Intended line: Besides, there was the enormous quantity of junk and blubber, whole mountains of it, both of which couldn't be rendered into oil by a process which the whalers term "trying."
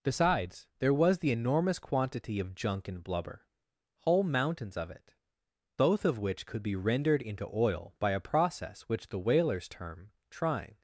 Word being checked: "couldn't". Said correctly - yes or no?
no